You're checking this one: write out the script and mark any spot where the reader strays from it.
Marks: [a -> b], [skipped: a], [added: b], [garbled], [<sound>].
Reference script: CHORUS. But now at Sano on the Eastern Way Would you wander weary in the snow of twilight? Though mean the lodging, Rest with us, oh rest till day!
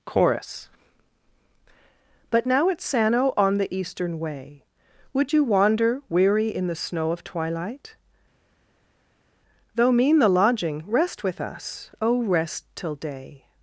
CHORUS. But now at Sano on the Eastern Way Would you wander weary in the snow of twilight? Though mean the lodging, Rest with us, oh rest till day!